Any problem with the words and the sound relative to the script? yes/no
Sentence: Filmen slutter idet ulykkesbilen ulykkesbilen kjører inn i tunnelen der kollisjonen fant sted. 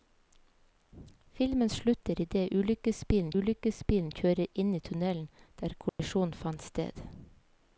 yes